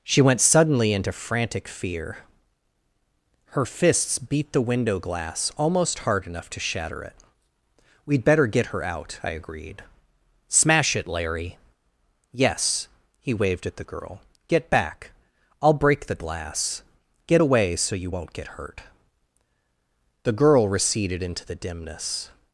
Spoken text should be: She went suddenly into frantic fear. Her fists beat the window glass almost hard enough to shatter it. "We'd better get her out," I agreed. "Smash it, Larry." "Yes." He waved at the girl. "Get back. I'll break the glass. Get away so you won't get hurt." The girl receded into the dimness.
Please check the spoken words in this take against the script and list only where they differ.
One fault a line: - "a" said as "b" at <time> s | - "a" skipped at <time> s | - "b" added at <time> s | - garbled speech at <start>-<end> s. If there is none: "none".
none